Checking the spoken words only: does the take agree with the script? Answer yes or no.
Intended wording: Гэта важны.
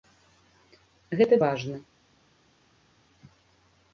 yes